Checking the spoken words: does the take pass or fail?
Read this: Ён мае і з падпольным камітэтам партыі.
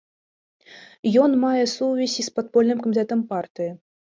fail